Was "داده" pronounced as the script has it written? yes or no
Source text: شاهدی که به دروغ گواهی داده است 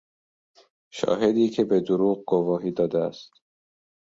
yes